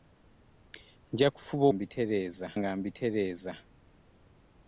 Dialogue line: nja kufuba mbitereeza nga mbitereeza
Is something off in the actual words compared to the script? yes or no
no